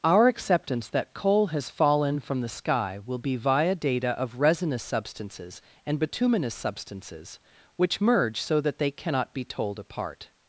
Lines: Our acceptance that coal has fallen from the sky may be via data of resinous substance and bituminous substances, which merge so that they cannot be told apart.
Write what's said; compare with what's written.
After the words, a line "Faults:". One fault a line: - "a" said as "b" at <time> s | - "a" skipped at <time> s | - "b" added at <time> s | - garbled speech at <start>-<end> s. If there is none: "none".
Our acceptance that coal has fallen from the sky will be via data of resinous substances and bituminous substances, which merge so that they cannot be told apart.
Faults:
- "may" said as "will" at 3.0 s
- "substance" said as "substances" at 4.8 s